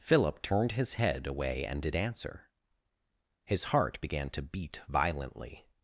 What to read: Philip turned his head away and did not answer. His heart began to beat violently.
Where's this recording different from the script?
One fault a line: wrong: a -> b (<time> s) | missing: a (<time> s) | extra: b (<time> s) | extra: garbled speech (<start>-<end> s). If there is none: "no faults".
missing: not (1.9 s)